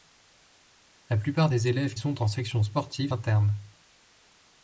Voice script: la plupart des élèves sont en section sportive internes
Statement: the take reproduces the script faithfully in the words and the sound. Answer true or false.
true